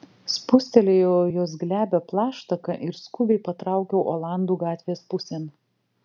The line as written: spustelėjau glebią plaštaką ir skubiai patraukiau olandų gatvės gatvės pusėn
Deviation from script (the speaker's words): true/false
true